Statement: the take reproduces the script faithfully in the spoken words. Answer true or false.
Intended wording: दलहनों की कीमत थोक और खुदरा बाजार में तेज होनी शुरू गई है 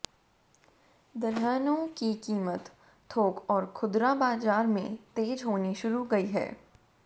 true